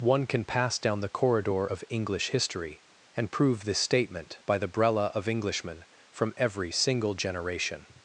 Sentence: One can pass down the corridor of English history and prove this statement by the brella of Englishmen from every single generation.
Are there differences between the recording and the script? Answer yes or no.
no